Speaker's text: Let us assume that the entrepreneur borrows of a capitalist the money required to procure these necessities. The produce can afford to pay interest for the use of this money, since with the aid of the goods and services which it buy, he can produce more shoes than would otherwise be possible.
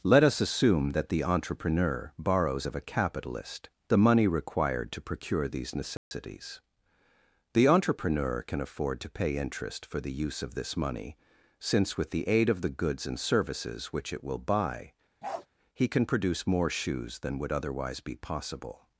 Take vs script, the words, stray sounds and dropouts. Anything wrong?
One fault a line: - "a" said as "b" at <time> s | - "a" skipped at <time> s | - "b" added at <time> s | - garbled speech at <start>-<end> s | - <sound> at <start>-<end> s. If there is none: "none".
- dropout at 6.0-6.1 s
- "produce" said as "entrepreneur" at 7.7 s
- "will" added at 14.2 s
- bark at 15.2-15.5 s